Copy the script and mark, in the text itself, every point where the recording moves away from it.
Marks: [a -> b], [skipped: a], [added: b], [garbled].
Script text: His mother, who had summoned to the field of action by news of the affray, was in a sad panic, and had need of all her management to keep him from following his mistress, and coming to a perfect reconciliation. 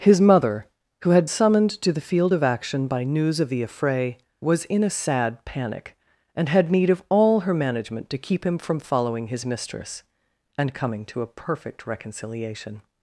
His mother, who had summoned to the field of action by news of the affray, was in a sad panic, and had need of all her management to keep him from following his mistress, and coming to a perfect reconciliation.